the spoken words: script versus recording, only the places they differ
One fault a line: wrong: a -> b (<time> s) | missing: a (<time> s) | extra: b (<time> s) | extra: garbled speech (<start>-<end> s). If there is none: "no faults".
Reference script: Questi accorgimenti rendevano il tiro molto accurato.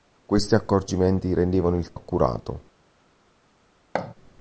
missing: tiro molto (2.0 s)